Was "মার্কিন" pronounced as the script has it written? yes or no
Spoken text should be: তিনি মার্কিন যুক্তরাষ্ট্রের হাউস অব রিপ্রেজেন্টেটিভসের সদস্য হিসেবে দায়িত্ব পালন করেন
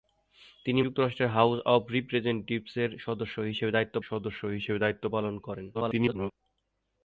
no